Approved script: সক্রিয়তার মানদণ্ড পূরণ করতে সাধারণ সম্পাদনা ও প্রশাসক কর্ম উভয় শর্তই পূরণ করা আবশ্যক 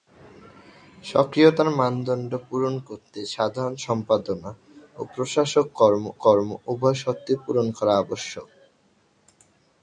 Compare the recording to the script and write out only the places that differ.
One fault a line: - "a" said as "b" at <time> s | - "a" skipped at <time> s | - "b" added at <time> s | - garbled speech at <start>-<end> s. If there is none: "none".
- "কর্ম" added at 6.2 s